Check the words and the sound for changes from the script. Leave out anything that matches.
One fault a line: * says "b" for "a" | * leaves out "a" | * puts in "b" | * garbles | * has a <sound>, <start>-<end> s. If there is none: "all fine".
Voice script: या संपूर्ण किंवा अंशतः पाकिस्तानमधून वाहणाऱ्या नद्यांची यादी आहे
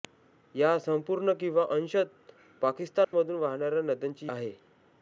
* has a dropout, 3.0-3.1 s
* leaves out "यादी"